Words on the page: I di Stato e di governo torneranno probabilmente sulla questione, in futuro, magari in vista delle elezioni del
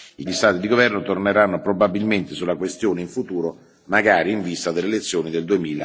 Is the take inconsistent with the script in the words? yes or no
no